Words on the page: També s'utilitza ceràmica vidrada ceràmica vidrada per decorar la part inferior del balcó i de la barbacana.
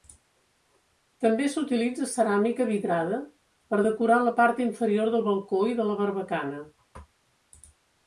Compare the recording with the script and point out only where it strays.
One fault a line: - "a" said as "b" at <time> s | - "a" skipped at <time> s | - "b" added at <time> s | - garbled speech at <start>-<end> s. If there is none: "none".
- "ceràmica vidrada" skipped at 3.2 s